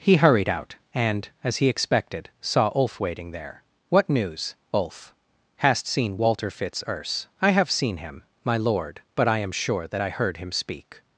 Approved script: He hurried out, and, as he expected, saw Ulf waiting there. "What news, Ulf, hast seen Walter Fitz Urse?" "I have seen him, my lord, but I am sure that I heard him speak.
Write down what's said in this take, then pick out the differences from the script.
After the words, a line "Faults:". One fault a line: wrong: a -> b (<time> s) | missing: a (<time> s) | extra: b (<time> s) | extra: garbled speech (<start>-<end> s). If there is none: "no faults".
He hurried out, and, as he expected, saw Ulf waiting there. "What news, Ulf, hast seen Walter Fitz Urse?" "I have seen him, my lord, but I am sure that I heard him speak.
Faults:
no faults